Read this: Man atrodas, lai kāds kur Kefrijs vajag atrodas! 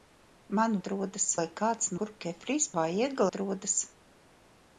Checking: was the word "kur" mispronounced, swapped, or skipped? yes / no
no